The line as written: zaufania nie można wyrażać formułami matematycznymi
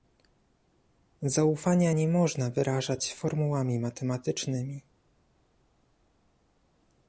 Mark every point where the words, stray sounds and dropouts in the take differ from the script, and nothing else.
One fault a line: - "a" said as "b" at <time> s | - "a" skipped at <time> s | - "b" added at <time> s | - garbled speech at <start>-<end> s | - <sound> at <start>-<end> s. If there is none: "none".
none